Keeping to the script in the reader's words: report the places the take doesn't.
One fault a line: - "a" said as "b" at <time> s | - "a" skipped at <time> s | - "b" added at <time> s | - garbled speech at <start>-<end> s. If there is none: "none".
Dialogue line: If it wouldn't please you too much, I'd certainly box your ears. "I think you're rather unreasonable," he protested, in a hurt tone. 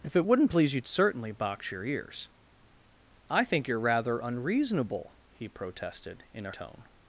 - "too much I'd" skipped at 0.8 s
- "hurt" skipped at 6.5 s